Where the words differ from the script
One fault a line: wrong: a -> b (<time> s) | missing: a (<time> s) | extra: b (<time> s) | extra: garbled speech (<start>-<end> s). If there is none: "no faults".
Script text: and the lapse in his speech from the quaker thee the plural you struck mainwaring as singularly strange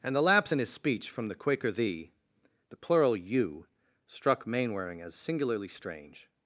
no faults